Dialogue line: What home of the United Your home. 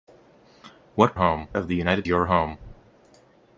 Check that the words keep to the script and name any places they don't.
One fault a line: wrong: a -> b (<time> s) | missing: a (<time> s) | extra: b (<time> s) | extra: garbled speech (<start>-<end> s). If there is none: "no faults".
no faults